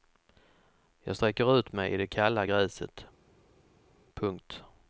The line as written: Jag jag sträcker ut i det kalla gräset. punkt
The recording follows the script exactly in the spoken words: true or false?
false